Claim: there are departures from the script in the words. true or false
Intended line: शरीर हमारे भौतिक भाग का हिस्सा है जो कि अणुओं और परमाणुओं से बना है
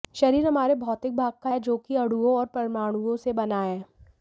true